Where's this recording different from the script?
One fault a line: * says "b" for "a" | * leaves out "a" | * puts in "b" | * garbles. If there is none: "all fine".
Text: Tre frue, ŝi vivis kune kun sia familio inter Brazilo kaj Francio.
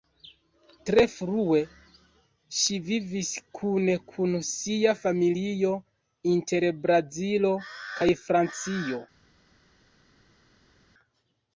all fine